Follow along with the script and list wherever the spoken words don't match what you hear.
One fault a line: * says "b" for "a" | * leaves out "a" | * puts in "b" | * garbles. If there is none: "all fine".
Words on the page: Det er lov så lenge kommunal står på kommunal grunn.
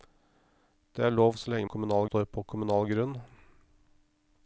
all fine